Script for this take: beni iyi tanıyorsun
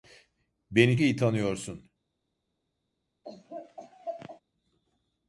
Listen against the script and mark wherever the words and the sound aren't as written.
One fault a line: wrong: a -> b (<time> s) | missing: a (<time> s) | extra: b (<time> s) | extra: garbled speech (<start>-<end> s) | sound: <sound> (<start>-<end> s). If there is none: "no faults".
sound: laugh (3.2-4.4 s)